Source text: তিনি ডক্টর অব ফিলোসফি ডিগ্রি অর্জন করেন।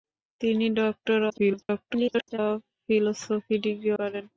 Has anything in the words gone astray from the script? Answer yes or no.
yes